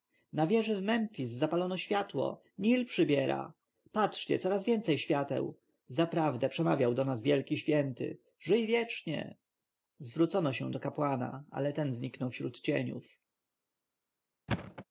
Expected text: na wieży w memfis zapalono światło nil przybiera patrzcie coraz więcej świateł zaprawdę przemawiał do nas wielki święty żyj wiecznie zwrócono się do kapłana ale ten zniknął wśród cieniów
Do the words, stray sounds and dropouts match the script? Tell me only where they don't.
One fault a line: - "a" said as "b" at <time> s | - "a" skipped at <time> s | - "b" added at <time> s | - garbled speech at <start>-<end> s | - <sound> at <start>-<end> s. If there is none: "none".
- thud at 14.5-14.8 s